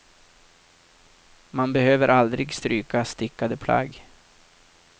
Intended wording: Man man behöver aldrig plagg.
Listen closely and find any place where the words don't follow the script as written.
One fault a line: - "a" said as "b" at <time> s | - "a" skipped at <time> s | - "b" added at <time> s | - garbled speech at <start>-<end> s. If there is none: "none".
- "man" skipped at 1.7 s
- "stryka stickade" added at 2.5 s